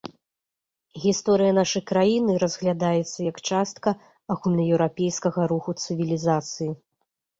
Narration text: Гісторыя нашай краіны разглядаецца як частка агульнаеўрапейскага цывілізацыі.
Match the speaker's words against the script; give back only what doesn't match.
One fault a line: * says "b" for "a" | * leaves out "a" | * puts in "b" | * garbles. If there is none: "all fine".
* puts in "руху"